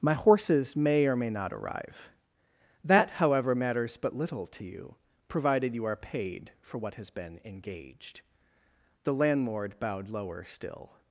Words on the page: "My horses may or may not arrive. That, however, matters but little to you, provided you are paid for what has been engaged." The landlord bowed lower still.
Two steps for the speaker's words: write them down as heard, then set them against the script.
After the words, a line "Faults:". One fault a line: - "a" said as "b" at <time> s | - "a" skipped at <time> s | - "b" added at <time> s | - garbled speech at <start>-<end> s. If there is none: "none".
"My horses may or may not arrive. That, however, matters but little to you, provided you are paid for what has been engaged." The landlord bowed lower still.
Faults:
none